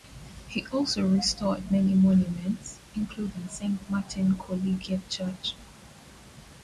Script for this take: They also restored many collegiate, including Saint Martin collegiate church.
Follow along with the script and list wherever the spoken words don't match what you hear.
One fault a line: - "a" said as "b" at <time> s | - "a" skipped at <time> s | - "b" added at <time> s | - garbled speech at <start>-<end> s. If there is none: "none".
- "They" said as "He" at 0.5 s
- "collegiate" said as "monuments" at 1.9 s